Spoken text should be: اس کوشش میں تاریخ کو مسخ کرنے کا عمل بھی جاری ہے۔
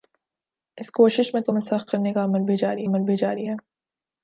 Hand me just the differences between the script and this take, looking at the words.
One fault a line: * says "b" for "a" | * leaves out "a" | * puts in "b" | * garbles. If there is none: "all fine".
* leaves out "تاریخ"
* puts in "عمل بھی جاری"